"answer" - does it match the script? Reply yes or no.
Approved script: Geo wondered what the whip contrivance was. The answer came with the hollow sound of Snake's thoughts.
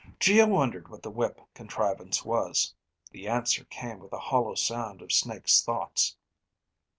yes